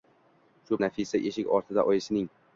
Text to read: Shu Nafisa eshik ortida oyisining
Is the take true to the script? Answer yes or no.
yes